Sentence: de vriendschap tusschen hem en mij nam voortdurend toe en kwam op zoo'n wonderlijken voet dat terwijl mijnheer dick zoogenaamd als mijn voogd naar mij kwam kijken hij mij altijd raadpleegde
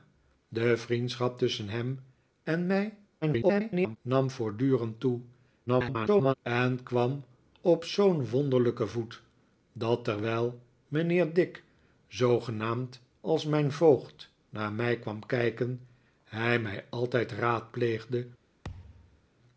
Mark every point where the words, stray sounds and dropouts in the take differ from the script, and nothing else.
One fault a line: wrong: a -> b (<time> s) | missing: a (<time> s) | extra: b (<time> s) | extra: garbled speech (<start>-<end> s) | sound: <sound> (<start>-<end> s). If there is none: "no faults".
extra: garbled speech (3.2-4.0 s)
extra: garbled speech (5.7-6.3 s)
sound: thud (18.6-19.3 s)